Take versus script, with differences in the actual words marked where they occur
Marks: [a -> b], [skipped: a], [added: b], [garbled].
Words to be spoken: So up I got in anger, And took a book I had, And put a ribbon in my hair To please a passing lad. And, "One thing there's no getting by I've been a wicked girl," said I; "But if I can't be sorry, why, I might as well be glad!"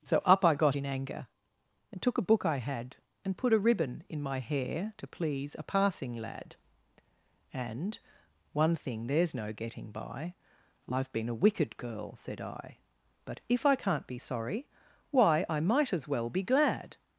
So up I got in anger, And took a book I had, And put a ribbon in my hair To please a passing lad. And, "One thing there's no getting by I've been a wicked girl," said I; "But if I can't be sorry, why, I might as well be glad!"